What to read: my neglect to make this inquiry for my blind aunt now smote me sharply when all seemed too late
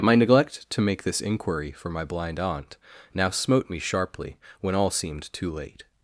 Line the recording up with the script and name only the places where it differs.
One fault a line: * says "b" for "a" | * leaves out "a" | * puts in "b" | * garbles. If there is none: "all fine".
all fine